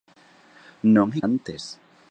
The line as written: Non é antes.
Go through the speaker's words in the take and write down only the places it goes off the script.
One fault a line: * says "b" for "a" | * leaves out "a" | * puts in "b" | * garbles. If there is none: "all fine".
all fine